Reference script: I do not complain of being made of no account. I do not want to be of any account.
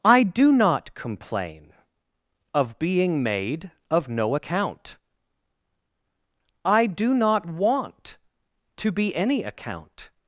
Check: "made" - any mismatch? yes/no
no